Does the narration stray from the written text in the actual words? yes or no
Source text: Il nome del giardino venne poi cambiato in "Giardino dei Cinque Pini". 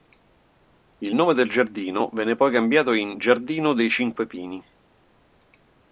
no